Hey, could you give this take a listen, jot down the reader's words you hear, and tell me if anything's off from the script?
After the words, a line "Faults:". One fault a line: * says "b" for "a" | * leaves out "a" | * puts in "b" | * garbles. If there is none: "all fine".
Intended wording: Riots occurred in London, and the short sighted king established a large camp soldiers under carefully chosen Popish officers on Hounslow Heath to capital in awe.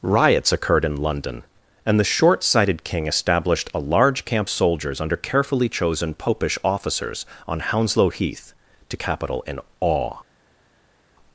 Riots occurred in London, and the short sighted king established a large camp soldiers under carefully chosen Popish officers on Hounslow Heath to capital in awe.
Faults:
all fine